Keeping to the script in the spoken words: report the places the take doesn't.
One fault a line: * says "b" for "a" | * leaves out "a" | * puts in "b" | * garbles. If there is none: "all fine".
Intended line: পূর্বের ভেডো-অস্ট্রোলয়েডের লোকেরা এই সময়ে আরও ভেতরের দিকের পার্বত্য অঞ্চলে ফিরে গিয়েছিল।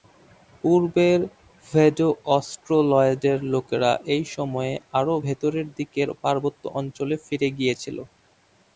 all fine